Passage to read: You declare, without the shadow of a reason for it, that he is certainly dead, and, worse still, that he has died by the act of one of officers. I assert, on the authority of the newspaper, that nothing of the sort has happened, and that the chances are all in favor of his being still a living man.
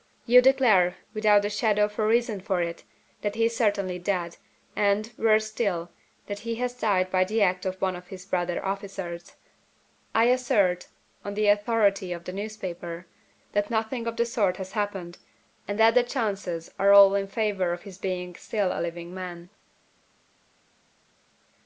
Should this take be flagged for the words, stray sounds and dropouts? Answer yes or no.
yes